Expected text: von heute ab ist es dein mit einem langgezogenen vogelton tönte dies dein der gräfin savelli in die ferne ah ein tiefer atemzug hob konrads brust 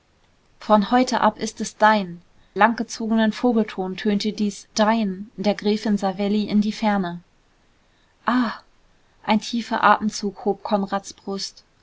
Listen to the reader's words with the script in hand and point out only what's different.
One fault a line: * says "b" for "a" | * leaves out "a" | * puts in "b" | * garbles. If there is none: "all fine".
* leaves out "mit einem"